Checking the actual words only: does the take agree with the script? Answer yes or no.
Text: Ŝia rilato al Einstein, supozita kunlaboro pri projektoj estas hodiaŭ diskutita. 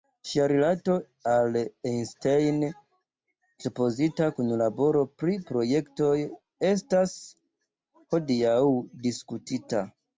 yes